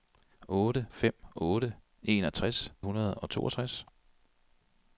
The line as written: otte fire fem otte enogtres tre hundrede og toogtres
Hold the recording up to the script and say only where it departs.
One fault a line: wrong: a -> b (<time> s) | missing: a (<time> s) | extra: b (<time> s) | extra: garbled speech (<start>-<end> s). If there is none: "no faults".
missing: fire (0.9 s)
missing: tre (2.7 s)